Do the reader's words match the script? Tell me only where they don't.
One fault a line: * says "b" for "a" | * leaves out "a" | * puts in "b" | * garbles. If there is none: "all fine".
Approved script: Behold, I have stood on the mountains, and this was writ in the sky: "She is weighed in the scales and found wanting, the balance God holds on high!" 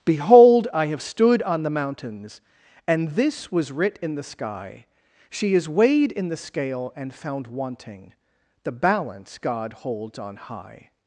* says "scale" for "scales"